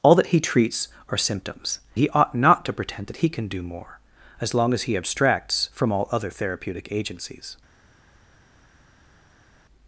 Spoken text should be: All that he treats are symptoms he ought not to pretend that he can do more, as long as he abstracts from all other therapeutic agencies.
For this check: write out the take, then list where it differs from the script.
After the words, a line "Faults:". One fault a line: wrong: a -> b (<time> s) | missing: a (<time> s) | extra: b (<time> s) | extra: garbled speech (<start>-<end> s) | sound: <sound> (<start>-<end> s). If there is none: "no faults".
All that he treats are symptoms he ought not to pretend that he can do more, as long as he abstracts from all other therapeutic agencies.
Faults:
no faults